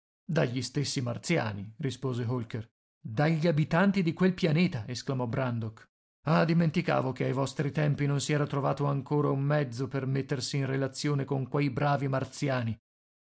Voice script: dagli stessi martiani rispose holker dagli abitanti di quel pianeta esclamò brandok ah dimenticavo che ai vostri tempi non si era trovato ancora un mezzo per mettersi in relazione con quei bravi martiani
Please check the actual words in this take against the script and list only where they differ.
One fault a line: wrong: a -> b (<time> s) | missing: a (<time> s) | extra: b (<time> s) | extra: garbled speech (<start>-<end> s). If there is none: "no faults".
no faults